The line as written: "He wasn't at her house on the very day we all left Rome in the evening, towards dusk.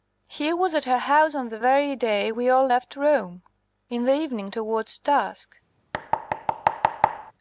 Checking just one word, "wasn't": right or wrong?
wrong